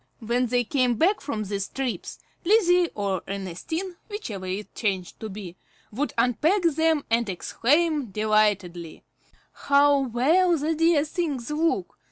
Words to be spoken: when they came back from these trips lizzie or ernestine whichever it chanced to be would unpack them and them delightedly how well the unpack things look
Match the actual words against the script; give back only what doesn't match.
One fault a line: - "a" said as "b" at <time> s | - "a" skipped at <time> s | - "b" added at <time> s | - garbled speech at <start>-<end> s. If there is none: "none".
- "them" said as "exclaim" at 7.3 s
- "unpack" said as "dear" at 10.7 s